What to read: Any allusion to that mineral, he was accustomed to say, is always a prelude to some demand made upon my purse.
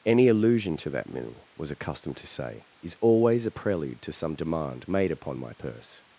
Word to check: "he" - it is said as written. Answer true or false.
false